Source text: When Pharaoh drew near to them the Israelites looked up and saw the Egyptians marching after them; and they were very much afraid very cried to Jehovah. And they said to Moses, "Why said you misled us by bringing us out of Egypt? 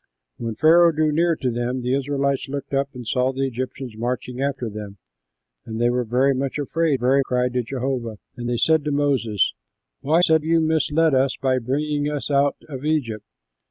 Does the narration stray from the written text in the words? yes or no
no